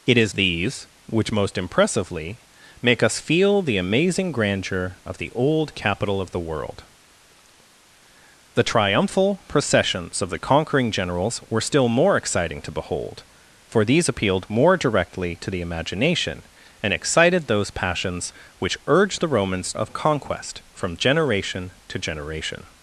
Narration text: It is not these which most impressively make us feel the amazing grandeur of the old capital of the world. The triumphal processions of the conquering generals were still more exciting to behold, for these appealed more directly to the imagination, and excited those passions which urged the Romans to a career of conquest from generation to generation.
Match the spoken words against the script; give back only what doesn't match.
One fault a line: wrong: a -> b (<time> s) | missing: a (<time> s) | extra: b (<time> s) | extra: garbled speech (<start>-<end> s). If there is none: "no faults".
missing: not (0.3 s)
missing: to a career (19.7 s)